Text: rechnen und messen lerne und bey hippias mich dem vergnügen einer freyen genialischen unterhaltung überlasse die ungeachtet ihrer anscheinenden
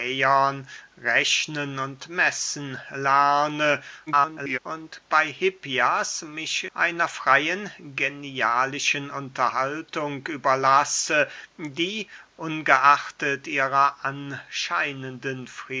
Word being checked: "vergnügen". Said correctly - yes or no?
no